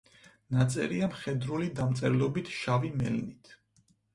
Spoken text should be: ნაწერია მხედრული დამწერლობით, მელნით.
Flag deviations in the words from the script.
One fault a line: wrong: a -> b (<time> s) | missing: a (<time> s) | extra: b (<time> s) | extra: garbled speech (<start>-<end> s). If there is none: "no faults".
extra: შავი (2.6 s)